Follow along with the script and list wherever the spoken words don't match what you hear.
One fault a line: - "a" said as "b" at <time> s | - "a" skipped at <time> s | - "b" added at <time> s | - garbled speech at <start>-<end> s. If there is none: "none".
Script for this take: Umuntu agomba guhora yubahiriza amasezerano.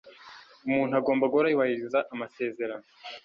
none